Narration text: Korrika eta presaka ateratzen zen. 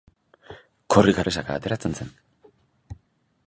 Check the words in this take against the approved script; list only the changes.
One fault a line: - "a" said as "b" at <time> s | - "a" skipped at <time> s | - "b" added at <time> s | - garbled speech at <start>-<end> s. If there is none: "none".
- "eta" skipped at 1.2 s